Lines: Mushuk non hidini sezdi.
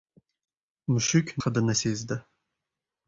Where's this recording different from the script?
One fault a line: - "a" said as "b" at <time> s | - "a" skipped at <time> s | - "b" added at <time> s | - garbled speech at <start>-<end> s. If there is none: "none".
- "non" skipped at 1.3 s